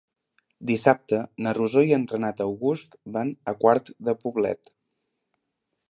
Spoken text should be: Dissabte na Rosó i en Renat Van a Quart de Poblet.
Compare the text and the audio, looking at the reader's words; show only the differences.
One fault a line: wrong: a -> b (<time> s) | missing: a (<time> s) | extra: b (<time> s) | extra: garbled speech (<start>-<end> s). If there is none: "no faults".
extra: August (2.5 s)